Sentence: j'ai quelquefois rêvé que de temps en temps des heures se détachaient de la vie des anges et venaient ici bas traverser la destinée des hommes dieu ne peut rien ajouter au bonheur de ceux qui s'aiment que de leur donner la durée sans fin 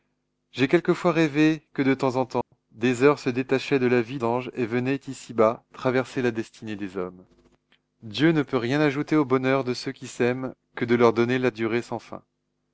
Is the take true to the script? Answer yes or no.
no